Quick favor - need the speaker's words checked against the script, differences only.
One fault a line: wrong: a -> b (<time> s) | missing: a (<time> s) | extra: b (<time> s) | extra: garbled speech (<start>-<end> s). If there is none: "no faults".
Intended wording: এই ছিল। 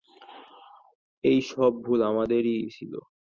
extra: সব ভুল আমাদেরই (1.5 s)